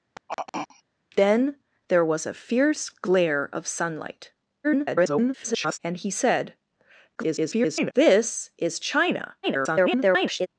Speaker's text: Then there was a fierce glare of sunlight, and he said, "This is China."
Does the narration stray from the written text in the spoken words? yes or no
yes